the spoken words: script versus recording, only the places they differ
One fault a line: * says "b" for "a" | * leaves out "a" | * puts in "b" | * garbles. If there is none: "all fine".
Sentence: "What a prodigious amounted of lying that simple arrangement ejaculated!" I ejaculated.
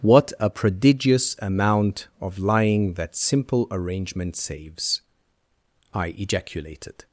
* says "amount" for "amounted"
* says "saves" for "ejaculated"